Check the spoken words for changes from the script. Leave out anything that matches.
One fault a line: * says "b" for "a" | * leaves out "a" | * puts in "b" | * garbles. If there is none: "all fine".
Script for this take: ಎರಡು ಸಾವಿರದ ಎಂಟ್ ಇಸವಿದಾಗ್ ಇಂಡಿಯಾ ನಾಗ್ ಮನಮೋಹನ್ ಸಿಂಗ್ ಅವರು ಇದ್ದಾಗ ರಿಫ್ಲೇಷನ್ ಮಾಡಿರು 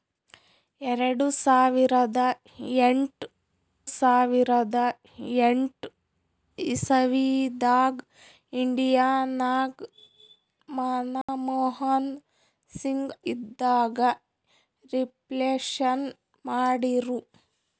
* puts in "ಸಾವಿರದ ಎಂಟ್"
* leaves out "ಅವರು"